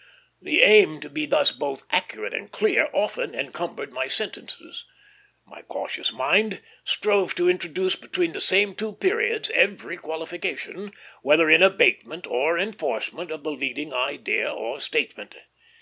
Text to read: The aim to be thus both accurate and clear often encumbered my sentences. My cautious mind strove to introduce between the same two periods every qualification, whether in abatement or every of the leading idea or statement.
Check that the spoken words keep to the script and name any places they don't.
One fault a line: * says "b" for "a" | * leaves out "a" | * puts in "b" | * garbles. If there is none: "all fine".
* says "enforcement" for "every"